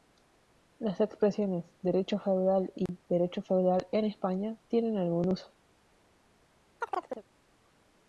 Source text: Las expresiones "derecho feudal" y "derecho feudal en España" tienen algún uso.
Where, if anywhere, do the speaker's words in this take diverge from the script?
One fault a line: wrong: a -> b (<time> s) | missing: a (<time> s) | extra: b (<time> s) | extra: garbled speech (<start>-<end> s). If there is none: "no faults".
no faults